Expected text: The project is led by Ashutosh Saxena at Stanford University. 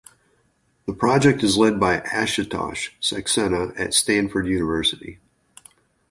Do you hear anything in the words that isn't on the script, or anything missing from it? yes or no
no